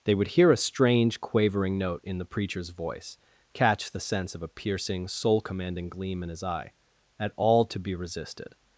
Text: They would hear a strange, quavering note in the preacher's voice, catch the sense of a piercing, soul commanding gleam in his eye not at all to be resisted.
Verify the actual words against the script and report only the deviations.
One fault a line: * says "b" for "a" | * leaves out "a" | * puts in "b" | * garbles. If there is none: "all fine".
* leaves out "not"